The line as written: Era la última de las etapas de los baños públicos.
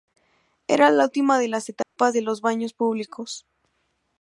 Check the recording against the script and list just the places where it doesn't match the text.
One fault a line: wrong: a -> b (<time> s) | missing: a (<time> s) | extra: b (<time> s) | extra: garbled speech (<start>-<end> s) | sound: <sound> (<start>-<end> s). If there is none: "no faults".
sound: dropout (1.8-2.0 s)